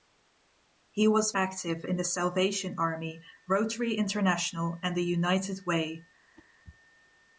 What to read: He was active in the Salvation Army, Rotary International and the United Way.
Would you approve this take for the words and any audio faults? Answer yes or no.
no